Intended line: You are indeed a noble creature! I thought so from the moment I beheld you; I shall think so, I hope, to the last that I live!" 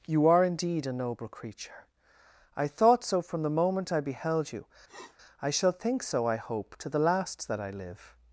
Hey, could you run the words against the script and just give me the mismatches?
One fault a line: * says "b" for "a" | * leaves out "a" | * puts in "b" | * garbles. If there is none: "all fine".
all fine